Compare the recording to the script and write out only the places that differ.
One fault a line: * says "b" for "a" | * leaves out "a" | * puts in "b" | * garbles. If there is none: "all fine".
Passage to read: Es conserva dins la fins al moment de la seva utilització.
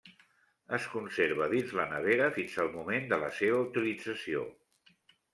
* puts in "nevera"